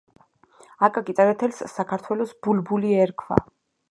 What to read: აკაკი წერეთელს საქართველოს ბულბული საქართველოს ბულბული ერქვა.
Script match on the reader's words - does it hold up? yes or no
no